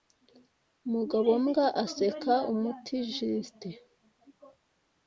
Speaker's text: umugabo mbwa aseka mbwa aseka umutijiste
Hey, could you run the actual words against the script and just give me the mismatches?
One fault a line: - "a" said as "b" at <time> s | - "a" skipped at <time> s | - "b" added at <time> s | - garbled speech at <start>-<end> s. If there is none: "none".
- "mbwa aseka" skipped at 2.3 s